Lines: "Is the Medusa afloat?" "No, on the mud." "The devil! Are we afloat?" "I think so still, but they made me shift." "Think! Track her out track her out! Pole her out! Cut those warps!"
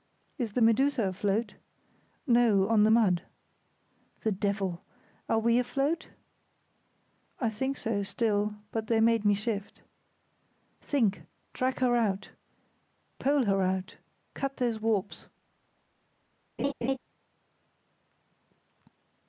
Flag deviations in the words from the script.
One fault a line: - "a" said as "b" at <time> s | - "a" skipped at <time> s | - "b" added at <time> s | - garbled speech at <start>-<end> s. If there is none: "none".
- "track her out" skipped at 12.3 s